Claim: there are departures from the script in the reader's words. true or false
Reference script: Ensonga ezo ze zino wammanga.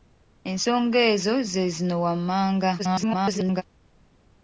true